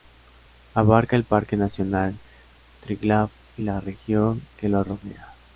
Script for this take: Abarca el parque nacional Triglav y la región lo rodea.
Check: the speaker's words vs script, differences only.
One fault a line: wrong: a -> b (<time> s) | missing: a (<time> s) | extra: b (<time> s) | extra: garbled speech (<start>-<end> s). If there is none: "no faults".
extra: que (4.6 s)